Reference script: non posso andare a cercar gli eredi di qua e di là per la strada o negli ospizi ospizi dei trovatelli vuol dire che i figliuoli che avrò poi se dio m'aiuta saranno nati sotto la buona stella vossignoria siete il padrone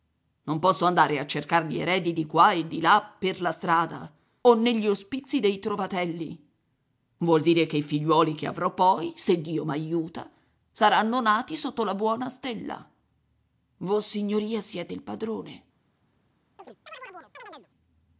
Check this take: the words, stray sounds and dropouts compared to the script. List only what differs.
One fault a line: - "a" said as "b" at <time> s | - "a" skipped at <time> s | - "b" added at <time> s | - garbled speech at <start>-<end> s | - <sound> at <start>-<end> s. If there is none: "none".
- "ospizi" skipped at 5.4 s
- chirp at 16.6-17.7 s